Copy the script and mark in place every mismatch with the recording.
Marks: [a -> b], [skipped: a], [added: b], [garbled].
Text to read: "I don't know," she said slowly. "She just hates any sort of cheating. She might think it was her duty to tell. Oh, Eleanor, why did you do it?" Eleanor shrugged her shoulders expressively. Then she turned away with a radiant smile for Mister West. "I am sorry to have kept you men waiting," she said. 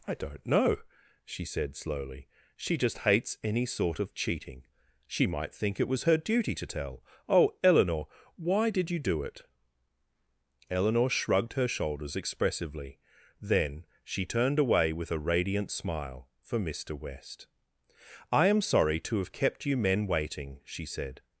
"I don't know," she said slowly. "She just hates any sort of cheating. She might think it was her duty to tell. Oh, Eleanor, why did you do it?" Eleanor shrugged her shoulders expressively. Then she turned away with a radiant smile for Mister West. "I am sorry to have kept you men waiting," she said.